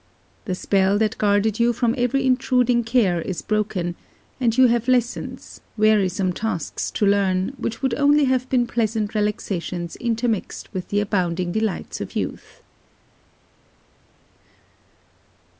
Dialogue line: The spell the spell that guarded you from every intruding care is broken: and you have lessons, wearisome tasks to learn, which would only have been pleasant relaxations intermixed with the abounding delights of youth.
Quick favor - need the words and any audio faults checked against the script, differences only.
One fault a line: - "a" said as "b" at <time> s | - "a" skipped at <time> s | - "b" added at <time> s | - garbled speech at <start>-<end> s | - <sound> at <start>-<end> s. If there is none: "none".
- "the spell" skipped at 1.0 s